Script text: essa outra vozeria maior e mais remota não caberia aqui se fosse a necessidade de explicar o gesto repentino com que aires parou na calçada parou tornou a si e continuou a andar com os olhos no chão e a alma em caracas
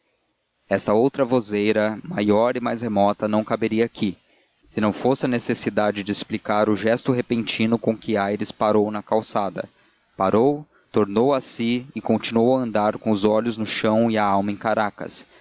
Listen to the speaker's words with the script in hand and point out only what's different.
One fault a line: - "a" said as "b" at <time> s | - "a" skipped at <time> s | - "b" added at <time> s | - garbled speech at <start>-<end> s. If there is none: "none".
- "não" added at 4.8 s